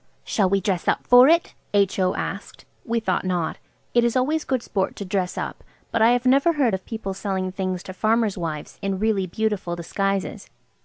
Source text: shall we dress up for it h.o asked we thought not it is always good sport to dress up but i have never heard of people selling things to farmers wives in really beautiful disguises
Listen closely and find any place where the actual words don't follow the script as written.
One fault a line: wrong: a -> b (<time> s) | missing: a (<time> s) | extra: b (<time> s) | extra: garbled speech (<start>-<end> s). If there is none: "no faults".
no faults